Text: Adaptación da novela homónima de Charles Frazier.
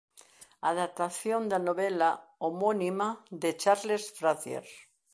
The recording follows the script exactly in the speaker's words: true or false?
true